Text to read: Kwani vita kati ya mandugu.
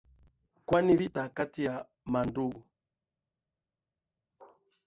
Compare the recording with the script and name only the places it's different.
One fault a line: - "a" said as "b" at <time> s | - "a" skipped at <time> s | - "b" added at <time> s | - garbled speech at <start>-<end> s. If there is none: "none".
none